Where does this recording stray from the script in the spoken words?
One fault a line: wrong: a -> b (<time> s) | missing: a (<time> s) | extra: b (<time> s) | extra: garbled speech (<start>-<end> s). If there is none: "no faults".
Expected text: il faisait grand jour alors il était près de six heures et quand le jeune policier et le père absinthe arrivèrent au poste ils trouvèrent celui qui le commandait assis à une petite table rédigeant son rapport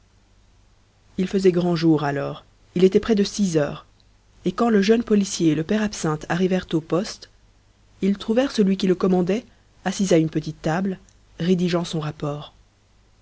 no faults